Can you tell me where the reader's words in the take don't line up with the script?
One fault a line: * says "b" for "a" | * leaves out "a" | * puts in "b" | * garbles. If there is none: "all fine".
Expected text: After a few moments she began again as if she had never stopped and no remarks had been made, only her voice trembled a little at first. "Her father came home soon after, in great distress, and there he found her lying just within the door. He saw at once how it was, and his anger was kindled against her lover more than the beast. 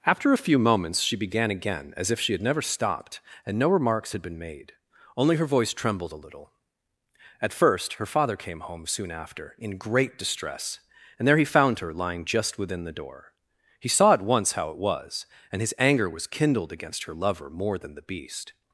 all fine